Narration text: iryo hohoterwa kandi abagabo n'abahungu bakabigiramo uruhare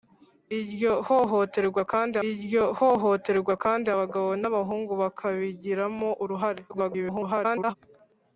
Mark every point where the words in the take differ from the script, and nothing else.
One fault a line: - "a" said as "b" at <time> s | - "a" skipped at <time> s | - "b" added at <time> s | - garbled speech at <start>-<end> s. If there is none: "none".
- "iryo hohoterwa kandi" added at 2.3 s
- garbled speech at 6.7-7.8 s